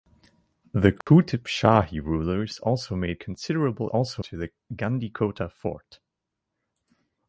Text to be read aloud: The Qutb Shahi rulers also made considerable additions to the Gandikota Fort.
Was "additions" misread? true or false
true